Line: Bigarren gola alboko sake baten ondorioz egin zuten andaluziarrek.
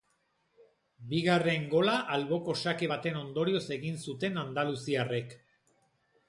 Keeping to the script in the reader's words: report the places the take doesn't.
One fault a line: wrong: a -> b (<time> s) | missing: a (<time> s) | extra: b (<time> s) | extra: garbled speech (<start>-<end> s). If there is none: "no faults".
no faults